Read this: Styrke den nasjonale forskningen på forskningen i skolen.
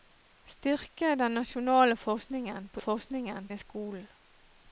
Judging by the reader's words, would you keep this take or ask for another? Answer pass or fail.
pass